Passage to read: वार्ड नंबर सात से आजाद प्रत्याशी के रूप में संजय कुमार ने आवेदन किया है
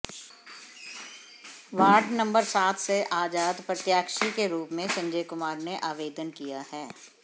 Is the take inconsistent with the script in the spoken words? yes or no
no